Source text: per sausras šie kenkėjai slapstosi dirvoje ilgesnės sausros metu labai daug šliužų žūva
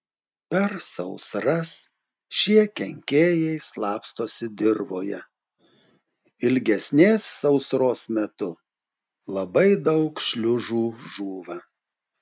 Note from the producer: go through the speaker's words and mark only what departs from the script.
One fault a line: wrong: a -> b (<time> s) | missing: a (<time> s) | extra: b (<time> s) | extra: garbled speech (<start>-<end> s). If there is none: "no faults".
no faults